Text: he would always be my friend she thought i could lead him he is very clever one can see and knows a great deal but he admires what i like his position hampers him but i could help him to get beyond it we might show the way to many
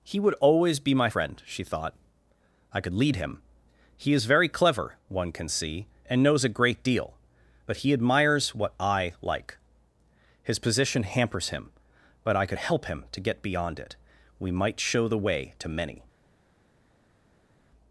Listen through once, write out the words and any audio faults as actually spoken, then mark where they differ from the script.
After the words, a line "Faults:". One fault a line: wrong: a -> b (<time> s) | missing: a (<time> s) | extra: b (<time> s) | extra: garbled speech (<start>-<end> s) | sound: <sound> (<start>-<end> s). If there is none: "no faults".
he would always be my friend she thought i could lead him he is very clever one can see and knows a great deal but he admires what i like his position hampers him but i could help him to get beyond it we might show the way to many
Faults:
no faults